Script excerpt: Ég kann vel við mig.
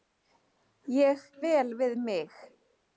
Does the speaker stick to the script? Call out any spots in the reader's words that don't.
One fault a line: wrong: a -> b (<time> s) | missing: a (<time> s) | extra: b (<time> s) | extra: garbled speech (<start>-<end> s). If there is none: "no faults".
missing: kann (1.2 s)